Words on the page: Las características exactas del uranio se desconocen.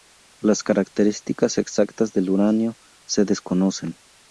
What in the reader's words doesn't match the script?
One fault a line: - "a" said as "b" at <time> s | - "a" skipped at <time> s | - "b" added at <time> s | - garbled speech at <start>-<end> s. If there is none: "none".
none